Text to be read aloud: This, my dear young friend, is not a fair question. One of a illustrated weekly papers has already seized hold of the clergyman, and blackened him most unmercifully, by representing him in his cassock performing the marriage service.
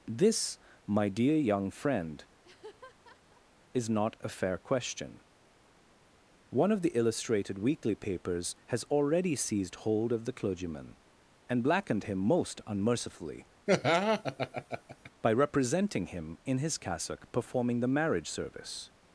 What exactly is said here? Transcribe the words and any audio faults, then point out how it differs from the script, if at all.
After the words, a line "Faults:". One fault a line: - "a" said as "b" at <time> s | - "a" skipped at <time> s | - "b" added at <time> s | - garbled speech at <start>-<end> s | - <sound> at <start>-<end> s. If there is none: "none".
This, my dear young friend, is not a fair question. One of the illustrated weekly papers has already seized hold of the clergyman, and blackened him most unmercifully, by representing him in his cassock performing the marriage service.
Faults:
- laugh at 2.4-3.5 s
- "a" said as "the" at 6.8 s
- laugh at 13.7-15.1 s